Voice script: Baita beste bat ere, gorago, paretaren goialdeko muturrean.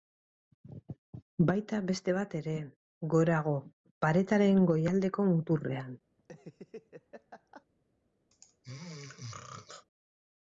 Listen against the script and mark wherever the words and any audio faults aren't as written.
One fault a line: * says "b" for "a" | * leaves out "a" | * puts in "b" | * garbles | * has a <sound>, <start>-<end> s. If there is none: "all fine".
* has a laugh, 6.2-7.7 s
* has a throat clearing, 8.3-9.9 s